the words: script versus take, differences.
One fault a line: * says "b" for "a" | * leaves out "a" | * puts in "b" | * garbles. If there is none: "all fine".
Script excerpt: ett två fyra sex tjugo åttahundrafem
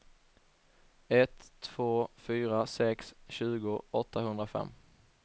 all fine